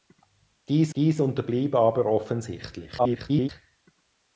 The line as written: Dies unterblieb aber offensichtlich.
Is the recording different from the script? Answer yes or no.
yes